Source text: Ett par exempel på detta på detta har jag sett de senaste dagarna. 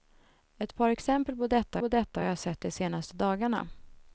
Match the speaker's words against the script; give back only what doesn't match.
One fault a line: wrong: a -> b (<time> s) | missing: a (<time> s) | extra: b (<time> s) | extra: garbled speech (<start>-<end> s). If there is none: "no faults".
no faults